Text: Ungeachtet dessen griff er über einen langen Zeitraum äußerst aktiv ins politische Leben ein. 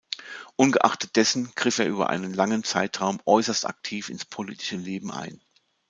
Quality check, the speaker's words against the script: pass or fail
pass